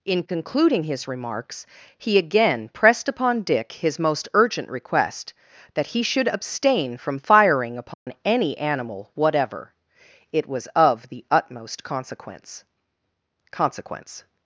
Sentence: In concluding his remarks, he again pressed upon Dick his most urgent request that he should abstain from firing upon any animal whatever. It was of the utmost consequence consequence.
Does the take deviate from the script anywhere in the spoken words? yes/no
no